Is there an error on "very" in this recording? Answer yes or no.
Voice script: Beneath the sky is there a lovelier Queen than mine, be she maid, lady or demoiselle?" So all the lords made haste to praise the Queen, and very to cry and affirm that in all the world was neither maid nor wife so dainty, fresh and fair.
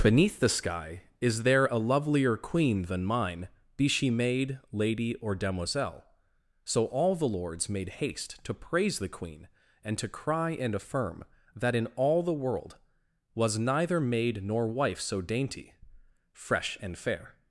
yes